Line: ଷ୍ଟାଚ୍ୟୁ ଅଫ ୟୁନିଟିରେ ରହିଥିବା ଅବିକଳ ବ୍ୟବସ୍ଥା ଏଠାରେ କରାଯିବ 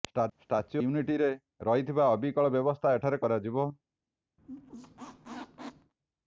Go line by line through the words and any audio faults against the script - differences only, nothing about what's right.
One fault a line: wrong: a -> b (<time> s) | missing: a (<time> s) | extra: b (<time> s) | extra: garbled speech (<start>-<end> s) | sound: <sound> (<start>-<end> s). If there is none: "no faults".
missing: ଅଫ (0.8 s)
sound: squeak (4.4-5.9 s)